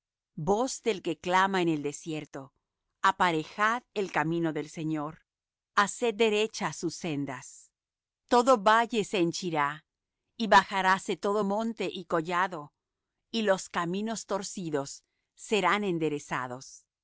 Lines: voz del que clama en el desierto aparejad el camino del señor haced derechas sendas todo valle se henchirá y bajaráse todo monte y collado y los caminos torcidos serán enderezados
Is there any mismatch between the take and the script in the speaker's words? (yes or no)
yes